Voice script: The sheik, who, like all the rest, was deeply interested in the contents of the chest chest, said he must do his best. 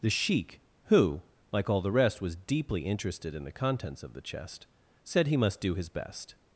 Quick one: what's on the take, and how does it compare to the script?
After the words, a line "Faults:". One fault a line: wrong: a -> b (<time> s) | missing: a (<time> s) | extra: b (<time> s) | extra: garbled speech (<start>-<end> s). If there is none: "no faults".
The sheik, who, like all the rest, was deeply interested in the contents of the chest, said he must do his best.
Faults:
missing: chest (4.7 s)